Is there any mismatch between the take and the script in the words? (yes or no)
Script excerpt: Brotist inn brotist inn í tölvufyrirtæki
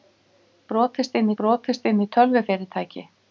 no